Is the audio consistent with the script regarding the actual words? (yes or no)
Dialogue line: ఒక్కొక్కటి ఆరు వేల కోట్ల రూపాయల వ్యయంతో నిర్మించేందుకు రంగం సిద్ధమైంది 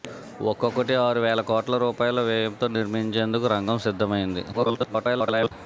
no